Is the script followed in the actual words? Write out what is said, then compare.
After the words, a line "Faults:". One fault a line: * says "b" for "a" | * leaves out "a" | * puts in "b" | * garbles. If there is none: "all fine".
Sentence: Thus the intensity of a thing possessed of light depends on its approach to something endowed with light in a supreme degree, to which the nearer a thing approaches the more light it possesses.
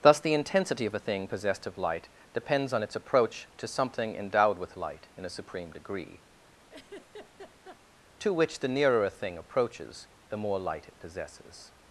Thus the intensity of a thing possessed of light depends on its approach to something endowed with light in a supreme degree, to which the nearer a thing approaches the more light it possesses.
Faults:
all fine